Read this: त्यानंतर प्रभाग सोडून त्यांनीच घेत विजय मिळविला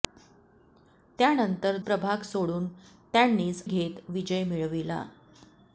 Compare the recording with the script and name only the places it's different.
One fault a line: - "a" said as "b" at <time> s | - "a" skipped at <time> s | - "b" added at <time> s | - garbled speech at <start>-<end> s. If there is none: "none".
none